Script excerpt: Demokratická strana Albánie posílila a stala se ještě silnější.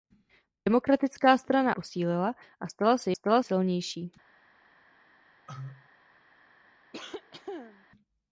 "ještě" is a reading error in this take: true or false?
true